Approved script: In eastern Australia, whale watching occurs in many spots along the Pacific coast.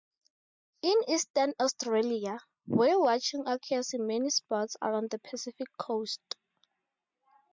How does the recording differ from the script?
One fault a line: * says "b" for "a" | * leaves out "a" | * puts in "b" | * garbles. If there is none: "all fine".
all fine